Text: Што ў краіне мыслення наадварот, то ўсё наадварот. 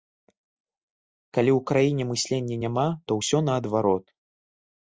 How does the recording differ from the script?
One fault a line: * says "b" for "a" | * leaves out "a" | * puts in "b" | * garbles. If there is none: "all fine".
* says "Калі" for "Што"
* says "няма" for "наадварот"